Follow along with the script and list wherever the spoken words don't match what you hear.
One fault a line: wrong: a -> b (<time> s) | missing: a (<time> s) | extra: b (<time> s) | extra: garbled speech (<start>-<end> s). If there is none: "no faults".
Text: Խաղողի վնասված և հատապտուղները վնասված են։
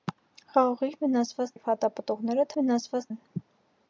no faults